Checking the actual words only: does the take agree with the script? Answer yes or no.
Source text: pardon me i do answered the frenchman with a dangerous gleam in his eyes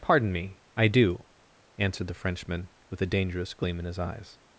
yes